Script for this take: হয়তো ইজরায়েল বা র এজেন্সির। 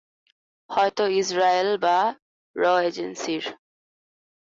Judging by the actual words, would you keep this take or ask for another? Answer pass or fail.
pass